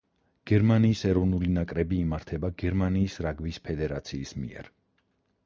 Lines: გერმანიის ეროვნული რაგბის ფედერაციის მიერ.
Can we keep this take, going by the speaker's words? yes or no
no